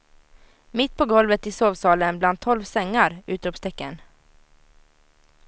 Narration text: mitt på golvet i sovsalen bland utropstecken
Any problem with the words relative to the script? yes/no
yes